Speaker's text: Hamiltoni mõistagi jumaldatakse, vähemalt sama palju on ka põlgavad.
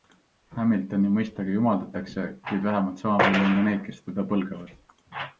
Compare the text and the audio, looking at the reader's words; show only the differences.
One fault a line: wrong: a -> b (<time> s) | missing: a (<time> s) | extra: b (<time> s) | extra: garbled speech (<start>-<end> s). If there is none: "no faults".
extra: kuid (2.5 s)
extra: neid kes teda (3.7 s)